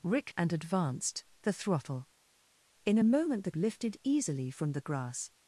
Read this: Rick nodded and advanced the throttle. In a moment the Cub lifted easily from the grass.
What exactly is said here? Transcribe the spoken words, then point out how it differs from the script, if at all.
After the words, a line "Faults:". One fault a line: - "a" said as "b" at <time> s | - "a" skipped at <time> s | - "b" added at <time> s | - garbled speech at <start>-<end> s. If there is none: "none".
Rick and advanced the throttle. In a moment the Lifted easily from the grass.
Faults:
- "nodded" skipped at 0.3 s
- "Cub" skipped at 3.5 s